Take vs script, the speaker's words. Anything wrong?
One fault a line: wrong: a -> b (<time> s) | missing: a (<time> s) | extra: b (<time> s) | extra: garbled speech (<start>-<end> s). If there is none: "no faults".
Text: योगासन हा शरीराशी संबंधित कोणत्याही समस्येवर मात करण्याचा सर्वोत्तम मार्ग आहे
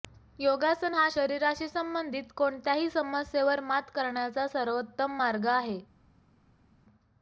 no faults